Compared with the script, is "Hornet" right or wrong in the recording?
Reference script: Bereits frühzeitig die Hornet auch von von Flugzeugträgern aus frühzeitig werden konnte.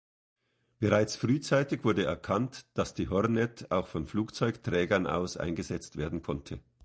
right